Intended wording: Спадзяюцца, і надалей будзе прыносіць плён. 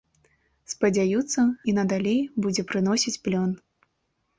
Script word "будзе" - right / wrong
right